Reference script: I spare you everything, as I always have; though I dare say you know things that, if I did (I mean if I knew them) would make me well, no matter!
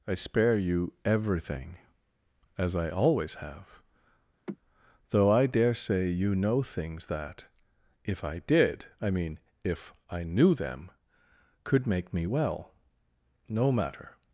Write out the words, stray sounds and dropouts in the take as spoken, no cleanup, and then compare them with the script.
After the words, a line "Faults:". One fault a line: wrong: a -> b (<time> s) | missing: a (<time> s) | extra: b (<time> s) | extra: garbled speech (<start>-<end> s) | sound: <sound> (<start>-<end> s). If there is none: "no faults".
I spare you everything, as I always have; though I dare say you know things that, if I did (I mean if I knew them) could make me well, no matter!
Faults:
sound: sigh (4.5-4.6 s)
wrong: would -> could (11.6 s)